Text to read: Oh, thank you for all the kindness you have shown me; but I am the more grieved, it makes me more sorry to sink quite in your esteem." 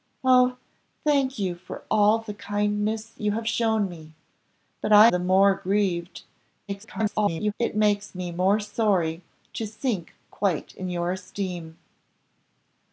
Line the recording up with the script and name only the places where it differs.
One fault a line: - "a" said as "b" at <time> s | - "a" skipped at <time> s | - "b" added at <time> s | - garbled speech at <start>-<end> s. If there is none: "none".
- "am" skipped at 5.1 s
- garbled speech at 6.7-7.5 s